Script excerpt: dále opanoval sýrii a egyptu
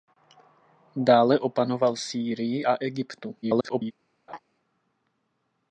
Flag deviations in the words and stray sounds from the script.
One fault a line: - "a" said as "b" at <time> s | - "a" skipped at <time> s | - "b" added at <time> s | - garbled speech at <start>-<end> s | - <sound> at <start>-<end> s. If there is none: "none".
- garbled speech at 3.4-3.9 s
- laugh at 4.3-4.4 s